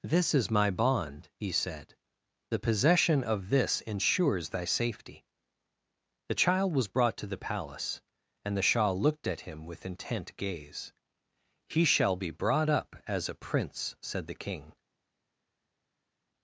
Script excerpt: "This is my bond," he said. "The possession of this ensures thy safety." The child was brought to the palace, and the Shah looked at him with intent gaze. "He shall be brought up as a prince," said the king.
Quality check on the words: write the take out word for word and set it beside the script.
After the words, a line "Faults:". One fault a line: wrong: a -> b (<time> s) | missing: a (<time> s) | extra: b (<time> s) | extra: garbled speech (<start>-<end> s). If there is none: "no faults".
"This is my bond," he said. "The possession of this ensures thy safety." The child was brought to the palace, and the Shah looked at him with intent gaze. "He shall be brought up as a prince," said the king.
Faults:
no faults